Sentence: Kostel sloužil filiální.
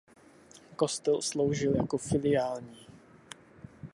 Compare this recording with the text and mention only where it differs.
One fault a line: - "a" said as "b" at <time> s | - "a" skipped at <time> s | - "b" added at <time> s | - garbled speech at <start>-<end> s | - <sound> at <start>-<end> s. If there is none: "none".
- "jako" added at 1.7 s